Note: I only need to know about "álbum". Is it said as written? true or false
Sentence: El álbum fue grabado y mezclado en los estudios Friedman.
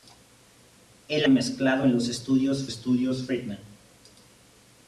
false